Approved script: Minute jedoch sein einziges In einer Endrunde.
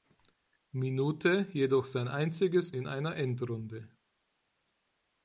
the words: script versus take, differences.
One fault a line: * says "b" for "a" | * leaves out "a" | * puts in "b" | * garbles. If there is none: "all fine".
all fine